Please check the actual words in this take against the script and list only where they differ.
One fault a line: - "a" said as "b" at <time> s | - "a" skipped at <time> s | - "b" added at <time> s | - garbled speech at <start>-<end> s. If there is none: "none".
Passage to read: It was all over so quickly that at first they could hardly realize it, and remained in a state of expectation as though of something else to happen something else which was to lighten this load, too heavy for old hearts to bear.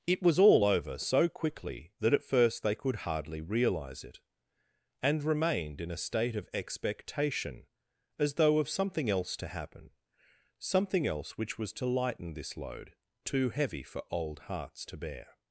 none